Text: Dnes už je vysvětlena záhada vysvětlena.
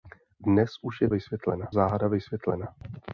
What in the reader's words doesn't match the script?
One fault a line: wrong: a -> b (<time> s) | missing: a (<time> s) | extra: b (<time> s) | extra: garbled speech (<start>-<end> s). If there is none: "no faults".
no faults